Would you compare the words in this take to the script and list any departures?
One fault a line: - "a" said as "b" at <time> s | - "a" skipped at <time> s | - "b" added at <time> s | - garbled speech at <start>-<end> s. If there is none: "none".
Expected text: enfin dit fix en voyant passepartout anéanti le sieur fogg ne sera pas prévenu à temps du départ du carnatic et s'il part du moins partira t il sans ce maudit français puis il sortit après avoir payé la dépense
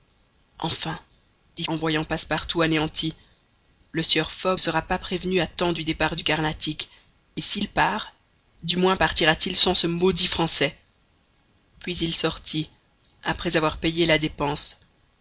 - "fix" skipped at 1.6 s
- "ne" skipped at 4.6 s